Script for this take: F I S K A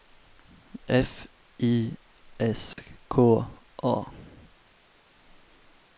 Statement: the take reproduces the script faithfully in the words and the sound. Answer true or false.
false